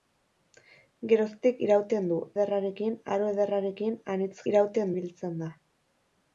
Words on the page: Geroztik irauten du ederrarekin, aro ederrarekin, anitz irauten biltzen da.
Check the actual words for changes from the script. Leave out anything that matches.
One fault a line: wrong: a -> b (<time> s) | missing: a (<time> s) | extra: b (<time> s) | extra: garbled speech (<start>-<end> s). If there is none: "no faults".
no faults